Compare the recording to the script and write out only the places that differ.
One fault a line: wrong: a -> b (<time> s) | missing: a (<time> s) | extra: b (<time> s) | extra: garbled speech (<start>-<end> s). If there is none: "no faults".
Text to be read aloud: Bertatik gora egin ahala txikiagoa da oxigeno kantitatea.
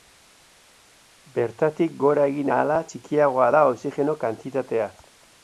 no faults